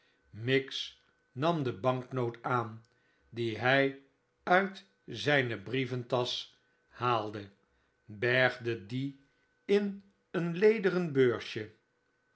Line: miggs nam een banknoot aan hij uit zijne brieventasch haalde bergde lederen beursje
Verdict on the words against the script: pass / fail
fail